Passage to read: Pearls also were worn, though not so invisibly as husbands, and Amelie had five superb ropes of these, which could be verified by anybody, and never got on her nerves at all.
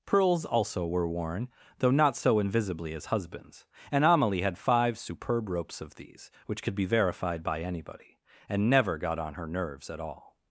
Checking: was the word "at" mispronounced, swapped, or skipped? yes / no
no